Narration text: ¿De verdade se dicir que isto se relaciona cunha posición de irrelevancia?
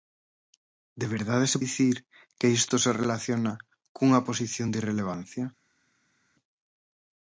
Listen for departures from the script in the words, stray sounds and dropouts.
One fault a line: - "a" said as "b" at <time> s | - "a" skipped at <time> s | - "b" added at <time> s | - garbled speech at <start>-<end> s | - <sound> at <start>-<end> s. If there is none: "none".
none